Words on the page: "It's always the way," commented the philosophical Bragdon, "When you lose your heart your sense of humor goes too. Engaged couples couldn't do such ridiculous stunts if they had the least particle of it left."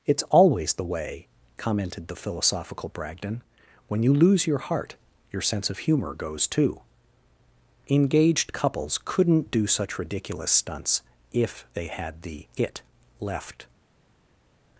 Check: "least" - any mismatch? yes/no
yes